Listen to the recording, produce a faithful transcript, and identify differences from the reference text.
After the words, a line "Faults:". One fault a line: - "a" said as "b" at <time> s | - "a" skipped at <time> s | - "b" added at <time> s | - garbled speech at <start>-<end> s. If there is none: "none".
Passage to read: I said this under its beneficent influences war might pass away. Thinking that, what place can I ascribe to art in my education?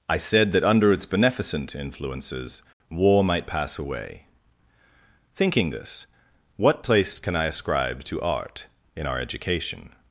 I said that under its beneficent influences war might pass away. Thinking this, what place can I ascribe to art in our education?
Faults:
- "this" said as "that" at 0.5 s
- "that" said as "this" at 5.7 s
- "my" said as "our" at 9.1 s